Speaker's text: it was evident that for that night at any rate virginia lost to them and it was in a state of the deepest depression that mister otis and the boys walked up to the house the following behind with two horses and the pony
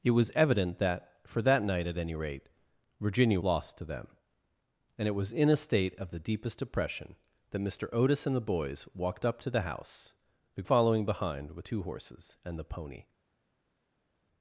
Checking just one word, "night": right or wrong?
right